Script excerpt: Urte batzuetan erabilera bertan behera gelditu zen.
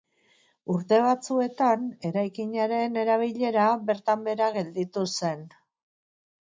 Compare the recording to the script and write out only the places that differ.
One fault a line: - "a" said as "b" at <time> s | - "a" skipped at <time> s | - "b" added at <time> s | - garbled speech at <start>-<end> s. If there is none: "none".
- "eraikinaren" added at 2.1 s